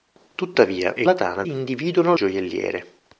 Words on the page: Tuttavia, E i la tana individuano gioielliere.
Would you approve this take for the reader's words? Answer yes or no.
yes